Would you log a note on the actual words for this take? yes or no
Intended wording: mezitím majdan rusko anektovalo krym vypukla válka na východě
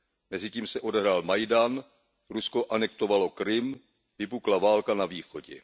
yes